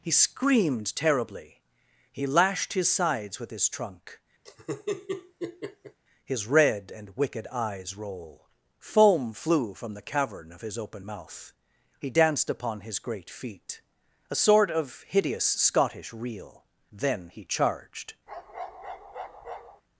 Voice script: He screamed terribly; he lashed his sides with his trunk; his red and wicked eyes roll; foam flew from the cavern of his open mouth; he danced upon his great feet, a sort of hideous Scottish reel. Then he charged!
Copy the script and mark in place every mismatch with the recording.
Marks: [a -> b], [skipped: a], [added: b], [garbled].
He screamed terribly; he lashed his sides with his trunk; his red and wicked eyes roll; foam flew from the cavern of his open mouth; he danced upon his great feet, a sort of hideous Scottish reel. Then he charged!